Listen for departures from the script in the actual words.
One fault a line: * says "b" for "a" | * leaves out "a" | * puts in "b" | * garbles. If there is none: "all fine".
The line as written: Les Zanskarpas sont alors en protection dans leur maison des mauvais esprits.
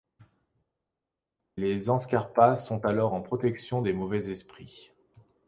* leaves out "dans leur maison"